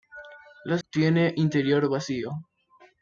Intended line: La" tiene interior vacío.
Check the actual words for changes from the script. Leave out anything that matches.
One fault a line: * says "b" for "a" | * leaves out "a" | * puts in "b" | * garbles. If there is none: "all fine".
all fine